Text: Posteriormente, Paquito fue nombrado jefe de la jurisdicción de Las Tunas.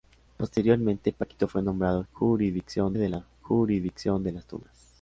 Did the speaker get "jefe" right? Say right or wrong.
wrong